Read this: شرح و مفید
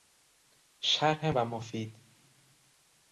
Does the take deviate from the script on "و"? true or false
false